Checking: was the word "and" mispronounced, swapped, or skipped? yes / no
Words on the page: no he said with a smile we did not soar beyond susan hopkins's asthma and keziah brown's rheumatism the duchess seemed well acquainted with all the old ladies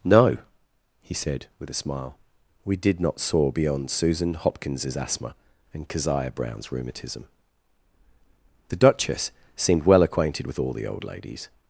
no